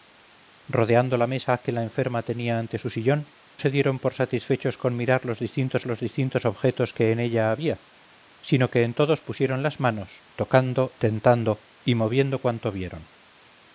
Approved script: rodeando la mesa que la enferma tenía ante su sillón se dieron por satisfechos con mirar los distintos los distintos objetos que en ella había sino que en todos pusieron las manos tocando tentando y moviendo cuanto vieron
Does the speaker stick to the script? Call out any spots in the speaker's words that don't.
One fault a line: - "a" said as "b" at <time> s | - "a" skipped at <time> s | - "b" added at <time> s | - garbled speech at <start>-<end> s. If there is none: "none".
none